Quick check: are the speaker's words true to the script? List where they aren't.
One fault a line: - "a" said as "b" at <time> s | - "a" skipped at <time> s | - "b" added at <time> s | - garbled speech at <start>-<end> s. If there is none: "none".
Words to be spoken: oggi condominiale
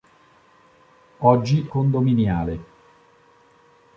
none